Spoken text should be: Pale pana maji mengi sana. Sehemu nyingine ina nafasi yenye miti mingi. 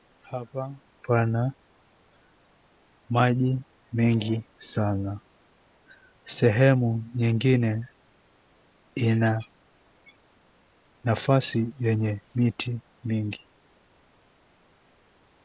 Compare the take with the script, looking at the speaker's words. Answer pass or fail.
fail